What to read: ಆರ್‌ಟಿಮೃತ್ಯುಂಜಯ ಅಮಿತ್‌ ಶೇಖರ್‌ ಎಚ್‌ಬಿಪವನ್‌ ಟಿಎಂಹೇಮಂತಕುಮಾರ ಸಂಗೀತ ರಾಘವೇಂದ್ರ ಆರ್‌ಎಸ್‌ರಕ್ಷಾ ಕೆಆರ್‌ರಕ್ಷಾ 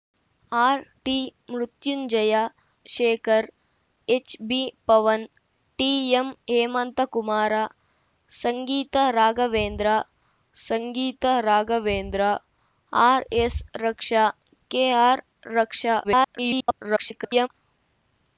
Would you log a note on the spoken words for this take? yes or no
yes